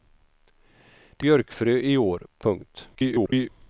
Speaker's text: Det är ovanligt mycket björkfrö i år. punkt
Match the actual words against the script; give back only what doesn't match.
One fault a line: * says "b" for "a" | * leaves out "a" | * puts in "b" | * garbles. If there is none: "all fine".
* leaves out "är ovanligt mycket"
* garbles